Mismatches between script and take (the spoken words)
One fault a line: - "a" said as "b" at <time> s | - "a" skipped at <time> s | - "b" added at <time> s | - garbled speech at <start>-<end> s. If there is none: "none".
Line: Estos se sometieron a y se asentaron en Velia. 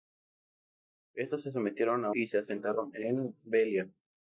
none